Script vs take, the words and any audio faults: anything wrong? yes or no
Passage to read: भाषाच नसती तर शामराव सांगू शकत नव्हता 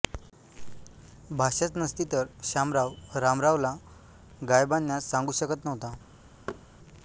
yes